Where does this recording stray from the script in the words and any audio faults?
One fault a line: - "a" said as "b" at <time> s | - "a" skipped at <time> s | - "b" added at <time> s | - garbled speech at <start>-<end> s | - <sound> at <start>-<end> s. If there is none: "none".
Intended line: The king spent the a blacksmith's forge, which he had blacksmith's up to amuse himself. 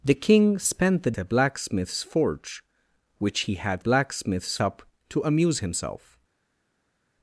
none